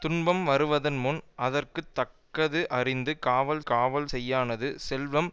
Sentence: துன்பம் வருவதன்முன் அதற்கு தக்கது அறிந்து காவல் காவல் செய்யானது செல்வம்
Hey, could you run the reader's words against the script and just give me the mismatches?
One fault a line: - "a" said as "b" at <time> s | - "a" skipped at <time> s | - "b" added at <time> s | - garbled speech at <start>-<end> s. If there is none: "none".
none